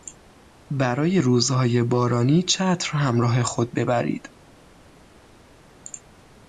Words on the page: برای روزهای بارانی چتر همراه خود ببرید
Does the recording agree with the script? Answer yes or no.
yes